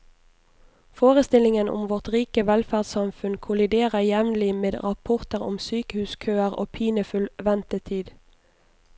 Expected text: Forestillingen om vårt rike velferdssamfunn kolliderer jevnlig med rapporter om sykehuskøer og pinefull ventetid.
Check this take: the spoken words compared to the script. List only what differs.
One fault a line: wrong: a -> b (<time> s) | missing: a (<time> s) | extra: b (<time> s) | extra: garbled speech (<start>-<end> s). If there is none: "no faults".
no faults